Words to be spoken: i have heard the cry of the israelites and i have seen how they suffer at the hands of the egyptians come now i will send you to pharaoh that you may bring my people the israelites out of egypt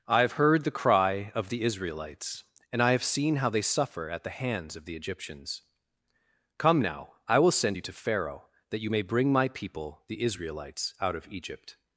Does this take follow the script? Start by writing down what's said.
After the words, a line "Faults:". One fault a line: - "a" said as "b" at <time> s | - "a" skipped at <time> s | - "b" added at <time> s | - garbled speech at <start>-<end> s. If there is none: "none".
i have heard the cry of the israelites and i have seen how they suffer at the hands of the egyptians come now i will send you to pharaoh that you may bring my people the israelites out of egypt
Faults:
none